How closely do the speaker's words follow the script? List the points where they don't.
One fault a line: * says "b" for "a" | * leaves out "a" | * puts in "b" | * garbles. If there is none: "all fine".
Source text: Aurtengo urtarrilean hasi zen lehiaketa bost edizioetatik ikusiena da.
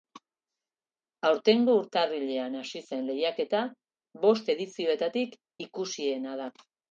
all fine